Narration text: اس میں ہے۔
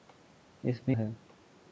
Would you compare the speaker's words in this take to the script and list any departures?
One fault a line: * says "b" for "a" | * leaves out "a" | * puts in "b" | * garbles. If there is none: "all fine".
all fine